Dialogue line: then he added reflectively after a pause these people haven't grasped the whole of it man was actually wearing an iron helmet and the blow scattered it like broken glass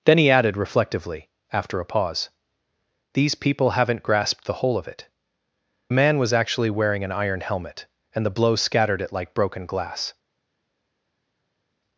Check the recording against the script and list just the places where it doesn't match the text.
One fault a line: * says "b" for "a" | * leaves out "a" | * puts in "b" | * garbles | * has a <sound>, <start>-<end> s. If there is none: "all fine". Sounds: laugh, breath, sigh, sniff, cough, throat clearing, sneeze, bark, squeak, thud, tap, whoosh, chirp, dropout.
all fine